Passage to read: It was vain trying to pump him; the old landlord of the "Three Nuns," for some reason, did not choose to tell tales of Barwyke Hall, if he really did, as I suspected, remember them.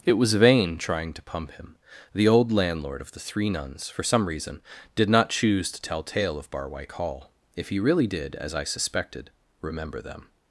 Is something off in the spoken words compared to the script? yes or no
yes